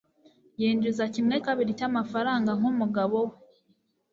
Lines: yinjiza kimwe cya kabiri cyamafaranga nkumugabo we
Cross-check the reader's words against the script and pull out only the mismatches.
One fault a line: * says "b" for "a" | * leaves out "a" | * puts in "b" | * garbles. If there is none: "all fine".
* leaves out "cya"